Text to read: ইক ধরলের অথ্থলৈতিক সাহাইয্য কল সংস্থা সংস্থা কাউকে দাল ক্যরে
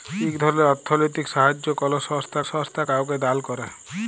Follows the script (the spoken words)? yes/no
yes